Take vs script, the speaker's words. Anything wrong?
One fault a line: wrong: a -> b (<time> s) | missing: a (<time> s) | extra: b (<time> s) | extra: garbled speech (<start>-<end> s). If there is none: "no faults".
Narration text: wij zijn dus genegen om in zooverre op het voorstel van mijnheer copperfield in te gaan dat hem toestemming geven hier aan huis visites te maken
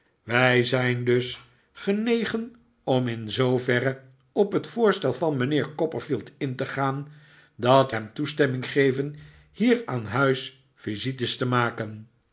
no faults